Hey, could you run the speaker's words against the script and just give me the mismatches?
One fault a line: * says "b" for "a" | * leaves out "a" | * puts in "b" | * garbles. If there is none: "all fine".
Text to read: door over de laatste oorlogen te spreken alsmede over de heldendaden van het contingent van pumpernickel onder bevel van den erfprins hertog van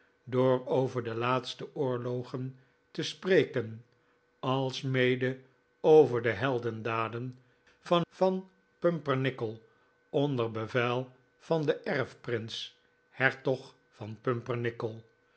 * leaves out "het contingent"